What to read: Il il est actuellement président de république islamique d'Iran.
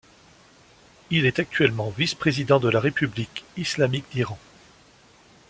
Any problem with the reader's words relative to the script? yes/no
yes